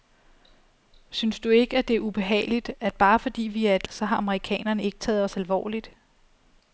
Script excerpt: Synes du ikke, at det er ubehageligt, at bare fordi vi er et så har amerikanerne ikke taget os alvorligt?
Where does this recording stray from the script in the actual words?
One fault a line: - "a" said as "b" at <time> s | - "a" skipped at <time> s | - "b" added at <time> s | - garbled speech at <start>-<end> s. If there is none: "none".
none